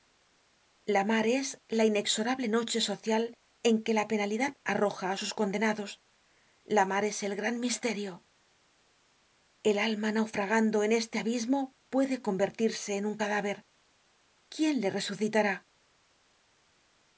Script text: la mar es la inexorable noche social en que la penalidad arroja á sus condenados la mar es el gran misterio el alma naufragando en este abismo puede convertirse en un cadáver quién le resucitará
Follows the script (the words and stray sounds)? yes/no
yes